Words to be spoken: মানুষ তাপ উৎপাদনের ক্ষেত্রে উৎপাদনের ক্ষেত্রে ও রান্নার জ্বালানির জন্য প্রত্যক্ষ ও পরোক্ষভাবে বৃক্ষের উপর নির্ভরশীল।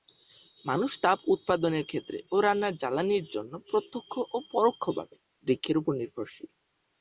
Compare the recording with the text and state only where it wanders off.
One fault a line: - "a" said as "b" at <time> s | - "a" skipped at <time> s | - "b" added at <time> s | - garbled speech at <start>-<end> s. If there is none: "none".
- "উৎপাদনের ক্ষেত্রে" skipped at 2.2 s